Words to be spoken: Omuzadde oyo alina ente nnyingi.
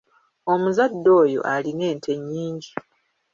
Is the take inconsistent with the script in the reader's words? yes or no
no